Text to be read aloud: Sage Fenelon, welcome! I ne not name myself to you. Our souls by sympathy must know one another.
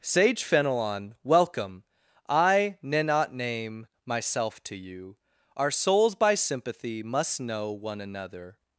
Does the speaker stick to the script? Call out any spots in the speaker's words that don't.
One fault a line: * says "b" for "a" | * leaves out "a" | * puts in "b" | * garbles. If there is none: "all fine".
all fine